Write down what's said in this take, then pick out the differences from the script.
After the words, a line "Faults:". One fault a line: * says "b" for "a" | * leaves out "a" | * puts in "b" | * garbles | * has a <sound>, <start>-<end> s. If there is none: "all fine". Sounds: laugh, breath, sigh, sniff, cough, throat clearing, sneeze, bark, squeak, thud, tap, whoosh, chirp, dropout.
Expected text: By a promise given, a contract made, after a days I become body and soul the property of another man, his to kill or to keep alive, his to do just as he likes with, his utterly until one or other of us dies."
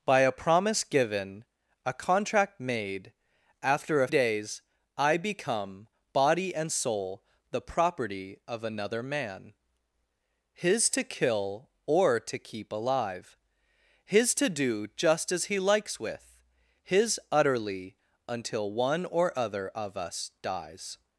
By a promise given, a contract made, after a days I become body and soul the property of another man, his to kill or to keep alive, his to do just as he likes with, his utterly until one or other of us dies."
Faults:
all fine